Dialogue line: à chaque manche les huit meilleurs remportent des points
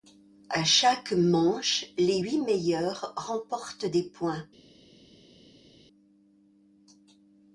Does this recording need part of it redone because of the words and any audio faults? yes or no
no